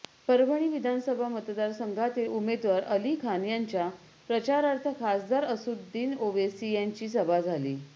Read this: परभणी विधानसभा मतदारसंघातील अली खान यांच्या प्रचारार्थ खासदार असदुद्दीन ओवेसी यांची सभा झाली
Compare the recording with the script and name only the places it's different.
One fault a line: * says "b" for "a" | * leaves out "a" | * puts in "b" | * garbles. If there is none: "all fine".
* puts in "उमेदवार"